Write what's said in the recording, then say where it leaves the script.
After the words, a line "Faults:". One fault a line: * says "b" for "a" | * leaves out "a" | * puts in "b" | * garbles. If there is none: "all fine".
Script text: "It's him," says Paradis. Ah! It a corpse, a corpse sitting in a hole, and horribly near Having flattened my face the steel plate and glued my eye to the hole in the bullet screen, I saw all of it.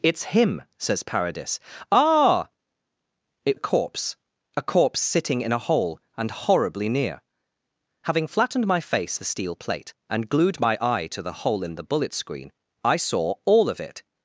"It's him," says Paradis. Ah! It a corpse, a corpse sitting in a hole, and horribly near Having flattened my face the steel plate and glued my eye to the hole in the bullet screen, I saw all of it.
Faults:
all fine